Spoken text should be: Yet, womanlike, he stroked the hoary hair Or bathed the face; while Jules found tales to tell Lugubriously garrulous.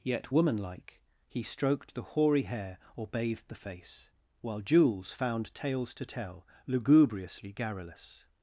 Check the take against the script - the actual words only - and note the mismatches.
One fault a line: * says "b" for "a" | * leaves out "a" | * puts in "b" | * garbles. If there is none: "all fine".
all fine